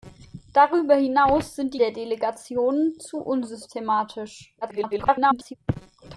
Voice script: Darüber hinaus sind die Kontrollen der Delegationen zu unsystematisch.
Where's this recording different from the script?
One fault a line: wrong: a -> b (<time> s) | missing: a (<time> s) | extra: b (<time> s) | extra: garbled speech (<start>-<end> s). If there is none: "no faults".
missing: Kontrollen (1.8 s)
extra: garbled speech (4.6-5.6 s)